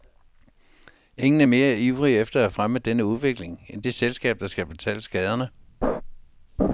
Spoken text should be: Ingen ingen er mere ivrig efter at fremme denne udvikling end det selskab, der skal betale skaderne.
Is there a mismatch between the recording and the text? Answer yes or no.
yes